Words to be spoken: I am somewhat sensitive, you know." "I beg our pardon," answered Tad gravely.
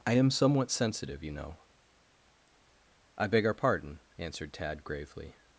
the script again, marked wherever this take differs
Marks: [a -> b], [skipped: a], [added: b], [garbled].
I am somewhat sensitive, you know." "I beg our pardon," answered Tad gravely.